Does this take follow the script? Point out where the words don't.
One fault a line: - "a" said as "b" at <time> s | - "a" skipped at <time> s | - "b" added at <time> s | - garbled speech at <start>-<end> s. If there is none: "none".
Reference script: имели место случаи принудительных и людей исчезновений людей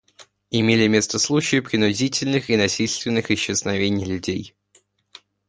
- "людей" said as "насильственных" at 2.5 s